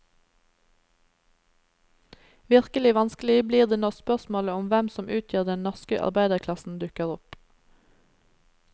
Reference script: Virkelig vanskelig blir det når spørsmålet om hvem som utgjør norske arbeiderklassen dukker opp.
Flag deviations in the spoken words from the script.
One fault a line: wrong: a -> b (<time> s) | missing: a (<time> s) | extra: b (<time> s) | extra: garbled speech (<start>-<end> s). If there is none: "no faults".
extra: den (5.5 s)